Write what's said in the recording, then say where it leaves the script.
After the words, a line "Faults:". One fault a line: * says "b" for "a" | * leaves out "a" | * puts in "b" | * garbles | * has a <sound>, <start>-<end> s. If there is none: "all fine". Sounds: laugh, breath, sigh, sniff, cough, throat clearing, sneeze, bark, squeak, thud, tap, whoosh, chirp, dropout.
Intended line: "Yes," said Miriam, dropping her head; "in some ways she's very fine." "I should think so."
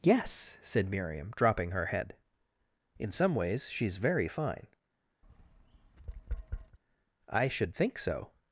"Yes," said Miriam, dropping her head; "in some ways she's very fine." "I should think so."
Faults:
* has a tap, 5.2-6.8 s